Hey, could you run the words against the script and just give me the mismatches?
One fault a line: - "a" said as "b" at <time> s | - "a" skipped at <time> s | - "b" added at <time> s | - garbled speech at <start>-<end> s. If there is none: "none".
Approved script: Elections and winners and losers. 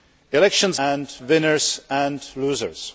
none